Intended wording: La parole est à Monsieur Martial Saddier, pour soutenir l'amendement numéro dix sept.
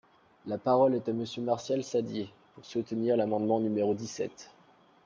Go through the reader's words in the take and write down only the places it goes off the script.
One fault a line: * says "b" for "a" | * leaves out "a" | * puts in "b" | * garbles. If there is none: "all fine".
all fine